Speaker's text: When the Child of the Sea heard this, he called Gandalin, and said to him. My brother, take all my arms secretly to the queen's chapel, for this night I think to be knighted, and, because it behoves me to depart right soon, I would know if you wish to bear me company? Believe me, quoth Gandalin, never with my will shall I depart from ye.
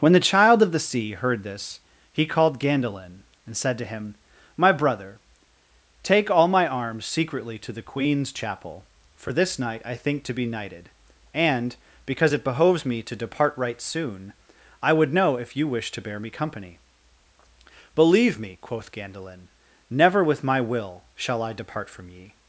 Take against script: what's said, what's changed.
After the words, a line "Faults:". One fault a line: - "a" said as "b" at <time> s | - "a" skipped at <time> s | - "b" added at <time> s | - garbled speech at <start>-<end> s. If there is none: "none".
When the Child of the Sea heard this, he called Gandalin, and said to him. My brother, take all my arms secretly to the queen's chapel, for this night I think to be knighted, and, because it behoves me to depart right soon, I would know if you wish to bear me company? Believe me, quoth Gandalin, never with my will shall I depart from ye.
Faults:
none